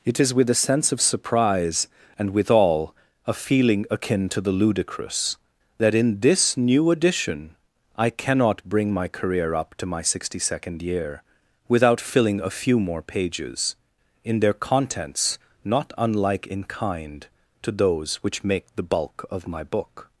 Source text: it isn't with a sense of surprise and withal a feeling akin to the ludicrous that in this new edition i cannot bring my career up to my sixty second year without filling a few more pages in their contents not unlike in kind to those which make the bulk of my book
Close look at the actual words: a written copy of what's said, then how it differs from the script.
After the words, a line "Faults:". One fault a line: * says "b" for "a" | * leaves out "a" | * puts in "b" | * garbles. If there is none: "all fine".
it is with a sense of surprise and withal a feeling akin to the ludicrous that in this new edition i cannot bring my career up to my sixty second year without filling a few more pages in their contents not unlike in kind to those which make the bulk of my book
Faults:
* says "is" for "isn't"